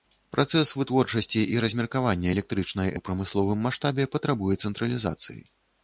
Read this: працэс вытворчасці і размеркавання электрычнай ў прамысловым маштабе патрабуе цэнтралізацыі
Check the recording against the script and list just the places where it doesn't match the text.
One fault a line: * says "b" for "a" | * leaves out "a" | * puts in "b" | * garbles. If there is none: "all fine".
all fine